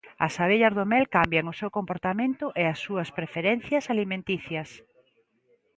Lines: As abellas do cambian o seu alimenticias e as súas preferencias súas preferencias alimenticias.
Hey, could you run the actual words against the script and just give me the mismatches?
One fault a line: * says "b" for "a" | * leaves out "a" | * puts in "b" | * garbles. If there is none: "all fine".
* puts in "mel"
* says "comportamento" for "alimenticias"
* leaves out "súas preferencias"